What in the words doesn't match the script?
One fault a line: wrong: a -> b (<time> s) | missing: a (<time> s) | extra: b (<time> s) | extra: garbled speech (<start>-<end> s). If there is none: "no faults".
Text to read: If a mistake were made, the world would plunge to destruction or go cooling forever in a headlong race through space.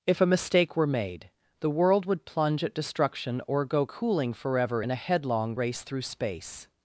wrong: to -> at (2.6 s)